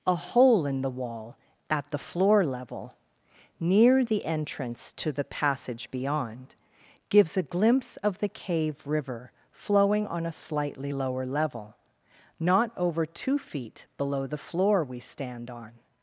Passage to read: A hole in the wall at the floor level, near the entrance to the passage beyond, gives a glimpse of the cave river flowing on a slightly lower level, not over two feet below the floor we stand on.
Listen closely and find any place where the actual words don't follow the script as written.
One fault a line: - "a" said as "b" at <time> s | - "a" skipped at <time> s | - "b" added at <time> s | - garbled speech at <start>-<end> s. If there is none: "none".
none